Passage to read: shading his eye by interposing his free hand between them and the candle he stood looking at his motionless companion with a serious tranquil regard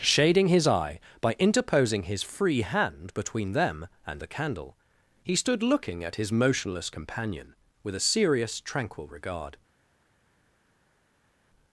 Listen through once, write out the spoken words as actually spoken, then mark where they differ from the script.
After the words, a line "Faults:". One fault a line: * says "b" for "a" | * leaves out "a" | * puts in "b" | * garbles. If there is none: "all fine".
shading his eye by interposing his free hand between them and the candle he stood looking at his motionless companion with a serious tranquil regard
Faults:
all fine